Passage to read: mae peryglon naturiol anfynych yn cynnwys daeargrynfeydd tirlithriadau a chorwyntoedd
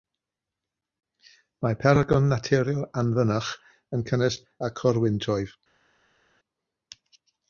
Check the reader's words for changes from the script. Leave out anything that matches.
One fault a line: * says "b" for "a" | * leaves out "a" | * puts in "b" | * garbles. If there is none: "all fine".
* leaves out "daeargrynfeydd tirlithriadau"